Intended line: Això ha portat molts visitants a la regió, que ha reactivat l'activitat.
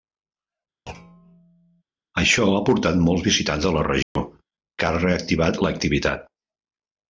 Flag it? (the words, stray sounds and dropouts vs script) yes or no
yes